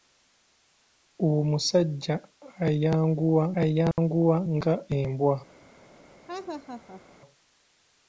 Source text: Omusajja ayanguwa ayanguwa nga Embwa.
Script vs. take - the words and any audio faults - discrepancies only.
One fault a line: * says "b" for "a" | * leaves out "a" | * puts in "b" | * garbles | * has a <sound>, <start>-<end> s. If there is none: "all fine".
* has a dropout, 3.9-4.0 s
* has a laugh, 6.3-7.0 s